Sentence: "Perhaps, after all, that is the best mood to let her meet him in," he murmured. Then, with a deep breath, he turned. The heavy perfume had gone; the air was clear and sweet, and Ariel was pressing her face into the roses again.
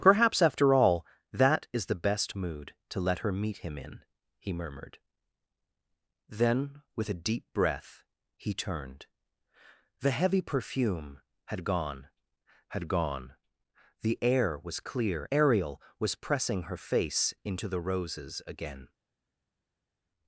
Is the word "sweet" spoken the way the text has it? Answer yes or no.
no